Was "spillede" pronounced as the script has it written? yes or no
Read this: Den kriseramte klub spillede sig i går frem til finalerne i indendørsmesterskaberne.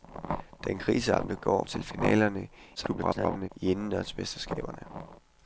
no